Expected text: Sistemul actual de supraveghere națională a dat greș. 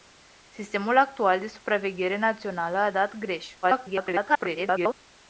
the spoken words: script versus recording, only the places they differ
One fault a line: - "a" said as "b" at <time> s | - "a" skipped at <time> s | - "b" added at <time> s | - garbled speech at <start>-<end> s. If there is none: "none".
- garbled speech at 3.6-4.9 s